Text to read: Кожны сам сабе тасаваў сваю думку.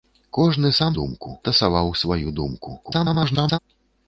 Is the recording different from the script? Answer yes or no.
yes